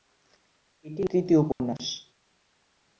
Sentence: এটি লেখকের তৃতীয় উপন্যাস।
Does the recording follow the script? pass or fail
fail